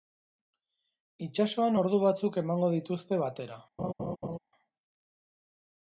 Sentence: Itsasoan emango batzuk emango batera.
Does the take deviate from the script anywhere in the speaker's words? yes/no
yes